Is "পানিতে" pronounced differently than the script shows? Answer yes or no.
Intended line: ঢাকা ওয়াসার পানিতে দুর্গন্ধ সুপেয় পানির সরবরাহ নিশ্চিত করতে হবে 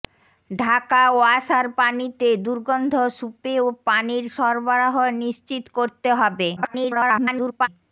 no